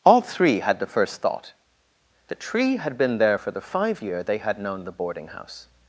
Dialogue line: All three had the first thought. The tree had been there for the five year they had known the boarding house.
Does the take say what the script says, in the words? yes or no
yes